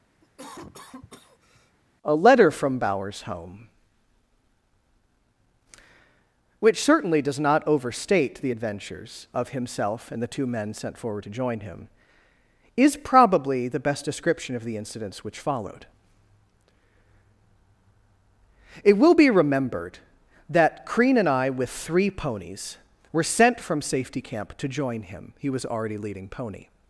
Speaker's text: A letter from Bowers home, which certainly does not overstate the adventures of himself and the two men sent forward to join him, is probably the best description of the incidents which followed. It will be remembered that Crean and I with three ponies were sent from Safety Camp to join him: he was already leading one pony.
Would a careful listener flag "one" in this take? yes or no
yes